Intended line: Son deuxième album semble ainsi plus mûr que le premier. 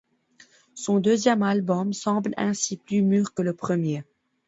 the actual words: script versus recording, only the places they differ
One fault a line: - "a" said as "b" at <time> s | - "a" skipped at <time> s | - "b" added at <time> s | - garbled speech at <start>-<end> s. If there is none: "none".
none